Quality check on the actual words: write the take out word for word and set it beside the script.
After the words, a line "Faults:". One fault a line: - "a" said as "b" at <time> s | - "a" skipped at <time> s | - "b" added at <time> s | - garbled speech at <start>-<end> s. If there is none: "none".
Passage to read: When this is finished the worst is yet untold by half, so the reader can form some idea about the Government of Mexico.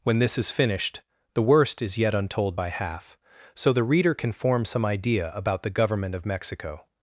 When this is finished the worst is yet untold by half, so the reader can form some idea about the Government of Mexico.
Faults:
none